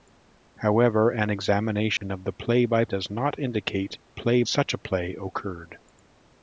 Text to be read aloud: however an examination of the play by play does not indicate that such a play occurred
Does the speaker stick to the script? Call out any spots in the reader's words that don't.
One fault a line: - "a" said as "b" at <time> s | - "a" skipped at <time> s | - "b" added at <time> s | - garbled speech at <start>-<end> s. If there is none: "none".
- "play" skipped at 2.9 s
- "that" said as "play" at 4.1 s